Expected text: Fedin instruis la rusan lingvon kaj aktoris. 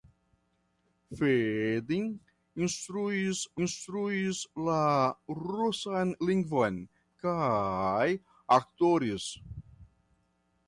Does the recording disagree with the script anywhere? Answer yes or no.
yes